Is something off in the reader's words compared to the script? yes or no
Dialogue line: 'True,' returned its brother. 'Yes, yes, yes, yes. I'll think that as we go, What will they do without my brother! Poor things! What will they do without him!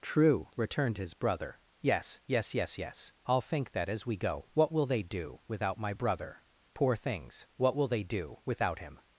yes